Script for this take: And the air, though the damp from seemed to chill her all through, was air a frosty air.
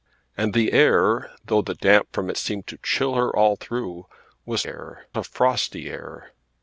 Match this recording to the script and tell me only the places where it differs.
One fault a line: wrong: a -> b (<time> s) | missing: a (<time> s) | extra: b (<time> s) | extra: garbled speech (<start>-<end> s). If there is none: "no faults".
no faults